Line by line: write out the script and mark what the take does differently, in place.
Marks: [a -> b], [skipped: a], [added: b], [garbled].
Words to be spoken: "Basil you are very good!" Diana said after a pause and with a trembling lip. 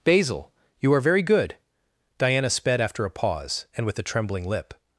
"Basil you are very good!" Diana [said -> sped] after a pause and with a trembling lip.